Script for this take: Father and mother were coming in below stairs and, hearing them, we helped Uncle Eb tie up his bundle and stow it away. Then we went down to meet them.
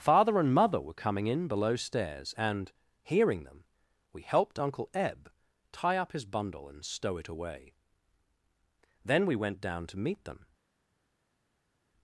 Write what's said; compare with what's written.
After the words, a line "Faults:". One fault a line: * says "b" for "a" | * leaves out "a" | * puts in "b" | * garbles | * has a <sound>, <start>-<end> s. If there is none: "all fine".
Father and mother were coming in below stairs and, hearing them, we helped Uncle Eb tie up his bundle and stow it away. Then we went down to meet them.
Faults:
all fine